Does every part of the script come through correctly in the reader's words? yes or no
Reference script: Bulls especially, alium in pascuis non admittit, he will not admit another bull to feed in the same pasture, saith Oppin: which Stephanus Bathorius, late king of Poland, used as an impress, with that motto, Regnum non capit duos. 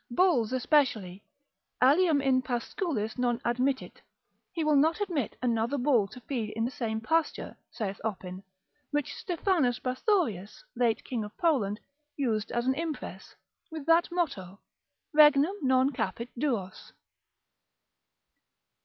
yes